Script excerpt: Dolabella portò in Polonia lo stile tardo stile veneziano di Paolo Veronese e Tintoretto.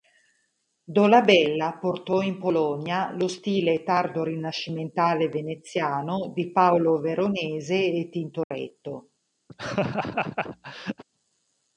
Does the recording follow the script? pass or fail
fail